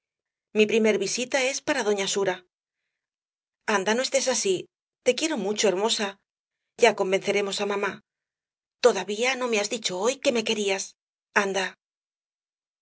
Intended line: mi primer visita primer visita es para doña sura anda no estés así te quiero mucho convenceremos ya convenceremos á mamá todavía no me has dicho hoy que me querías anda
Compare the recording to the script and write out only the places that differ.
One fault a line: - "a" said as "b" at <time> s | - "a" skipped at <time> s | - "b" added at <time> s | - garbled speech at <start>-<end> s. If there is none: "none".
- "primer visita" skipped at 1.4 s
- "convenceremos" said as "hermosa" at 5.7 s